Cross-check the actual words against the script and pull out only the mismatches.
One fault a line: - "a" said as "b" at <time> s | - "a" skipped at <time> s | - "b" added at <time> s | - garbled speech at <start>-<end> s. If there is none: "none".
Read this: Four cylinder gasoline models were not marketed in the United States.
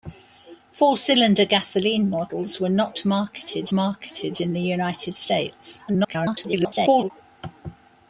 - "marketed" added at 3.7 s
- garbled speech at 5.9-7.1 s